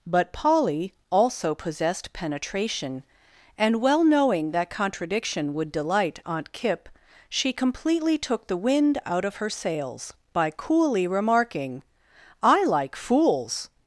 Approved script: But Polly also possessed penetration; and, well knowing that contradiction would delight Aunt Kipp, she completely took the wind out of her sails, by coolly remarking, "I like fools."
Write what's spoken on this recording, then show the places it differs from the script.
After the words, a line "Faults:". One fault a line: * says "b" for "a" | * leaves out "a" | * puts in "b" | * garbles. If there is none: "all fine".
But Polly also possessed penetration; and, well knowing that contradiction would delight Aunt Kipp, she completely took the wind out of her sails, by coolly remarking, "I like fools."
Faults:
all fine